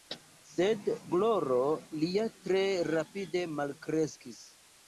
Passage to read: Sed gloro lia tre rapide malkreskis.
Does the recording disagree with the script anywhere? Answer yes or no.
no